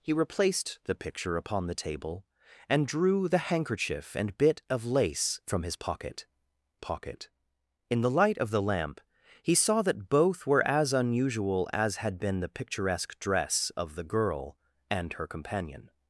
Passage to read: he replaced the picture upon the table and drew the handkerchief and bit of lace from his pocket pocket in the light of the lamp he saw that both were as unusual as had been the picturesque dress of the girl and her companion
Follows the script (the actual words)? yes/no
yes